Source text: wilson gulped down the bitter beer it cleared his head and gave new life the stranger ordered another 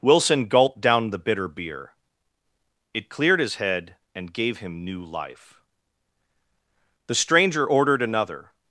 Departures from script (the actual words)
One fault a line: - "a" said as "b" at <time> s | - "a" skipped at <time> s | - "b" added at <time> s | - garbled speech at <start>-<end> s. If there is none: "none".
- "him" added at 4.6 s